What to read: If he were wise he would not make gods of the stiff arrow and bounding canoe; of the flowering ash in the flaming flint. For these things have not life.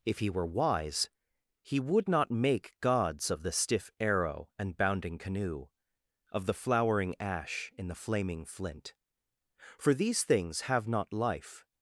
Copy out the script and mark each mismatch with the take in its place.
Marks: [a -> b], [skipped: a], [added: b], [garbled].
If he were wise he would not make gods of the stiff arrow and bounding canoe; of the flowering ash in the flaming flint. For these things have not life.